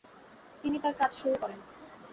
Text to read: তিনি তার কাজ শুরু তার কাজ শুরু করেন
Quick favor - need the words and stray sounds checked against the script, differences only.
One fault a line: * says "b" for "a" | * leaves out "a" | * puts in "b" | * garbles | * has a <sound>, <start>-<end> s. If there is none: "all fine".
* leaves out "তার কাজ শুরু"